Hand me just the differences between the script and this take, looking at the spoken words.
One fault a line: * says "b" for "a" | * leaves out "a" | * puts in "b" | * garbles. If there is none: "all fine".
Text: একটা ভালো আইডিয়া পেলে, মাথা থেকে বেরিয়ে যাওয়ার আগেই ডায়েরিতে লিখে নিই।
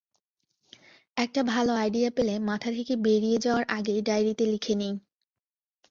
all fine